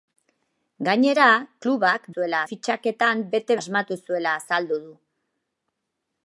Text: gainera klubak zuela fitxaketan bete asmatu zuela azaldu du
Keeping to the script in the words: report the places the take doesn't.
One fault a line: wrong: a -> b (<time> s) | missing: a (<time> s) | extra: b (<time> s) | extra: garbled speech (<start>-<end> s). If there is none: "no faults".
no faults